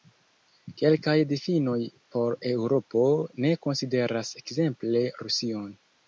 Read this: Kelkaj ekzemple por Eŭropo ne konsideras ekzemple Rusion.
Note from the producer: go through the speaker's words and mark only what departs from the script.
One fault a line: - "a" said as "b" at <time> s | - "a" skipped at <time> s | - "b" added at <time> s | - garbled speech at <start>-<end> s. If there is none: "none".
- "ekzemple" said as "difinoj" at 1.3 s